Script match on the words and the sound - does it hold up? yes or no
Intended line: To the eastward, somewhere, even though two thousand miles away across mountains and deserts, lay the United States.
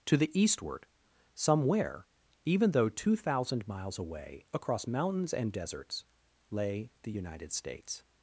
yes